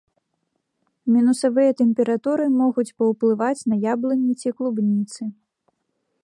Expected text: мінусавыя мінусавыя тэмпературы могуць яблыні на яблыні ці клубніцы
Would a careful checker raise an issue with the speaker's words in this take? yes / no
yes